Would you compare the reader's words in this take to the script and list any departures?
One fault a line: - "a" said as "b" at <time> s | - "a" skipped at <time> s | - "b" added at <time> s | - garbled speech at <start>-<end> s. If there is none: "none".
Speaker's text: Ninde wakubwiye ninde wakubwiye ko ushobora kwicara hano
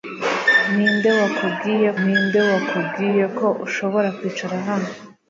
none